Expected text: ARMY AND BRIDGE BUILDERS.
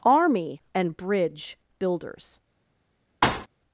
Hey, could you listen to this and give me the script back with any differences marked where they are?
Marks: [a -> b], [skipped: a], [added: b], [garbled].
ARMY AND BRIDGE BUILDERS.